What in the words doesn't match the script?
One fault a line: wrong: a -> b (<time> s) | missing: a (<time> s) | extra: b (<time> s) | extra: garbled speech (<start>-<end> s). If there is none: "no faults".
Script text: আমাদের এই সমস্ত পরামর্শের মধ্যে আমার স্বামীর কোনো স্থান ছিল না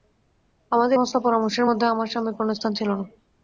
missing: এই (1.0 s)